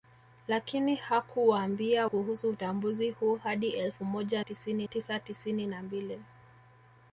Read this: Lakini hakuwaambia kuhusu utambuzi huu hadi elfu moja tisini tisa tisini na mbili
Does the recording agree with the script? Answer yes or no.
yes